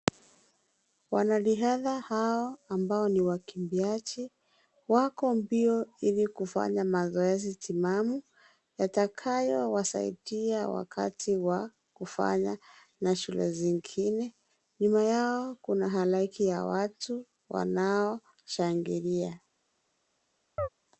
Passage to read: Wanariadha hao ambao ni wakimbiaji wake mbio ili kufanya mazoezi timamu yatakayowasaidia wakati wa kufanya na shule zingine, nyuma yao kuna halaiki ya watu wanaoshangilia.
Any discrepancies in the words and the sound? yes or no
yes